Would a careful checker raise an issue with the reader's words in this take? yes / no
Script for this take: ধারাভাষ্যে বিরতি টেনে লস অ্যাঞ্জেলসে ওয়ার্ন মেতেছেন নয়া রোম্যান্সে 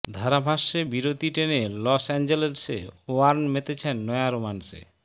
no